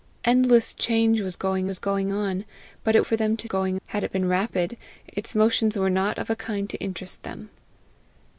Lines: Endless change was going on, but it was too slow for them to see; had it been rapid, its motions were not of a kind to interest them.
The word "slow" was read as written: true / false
false